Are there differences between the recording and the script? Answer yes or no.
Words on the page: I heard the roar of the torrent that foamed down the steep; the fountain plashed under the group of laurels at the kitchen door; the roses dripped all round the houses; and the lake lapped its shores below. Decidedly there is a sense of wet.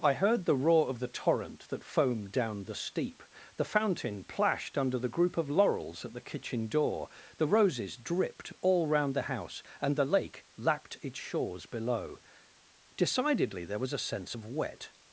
yes